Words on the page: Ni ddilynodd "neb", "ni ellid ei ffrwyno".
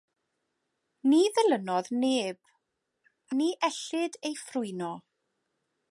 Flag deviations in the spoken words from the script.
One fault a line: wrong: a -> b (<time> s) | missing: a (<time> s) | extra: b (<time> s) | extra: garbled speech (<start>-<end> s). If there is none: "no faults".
no faults